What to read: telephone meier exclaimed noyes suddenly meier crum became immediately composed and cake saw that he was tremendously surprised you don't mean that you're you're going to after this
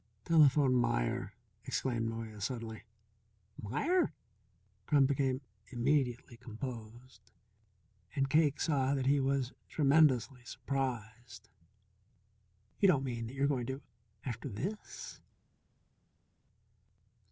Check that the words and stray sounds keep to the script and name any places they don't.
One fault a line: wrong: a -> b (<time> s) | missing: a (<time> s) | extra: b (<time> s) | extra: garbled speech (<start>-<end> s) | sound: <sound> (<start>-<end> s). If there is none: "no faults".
missing: you're (13.5 s)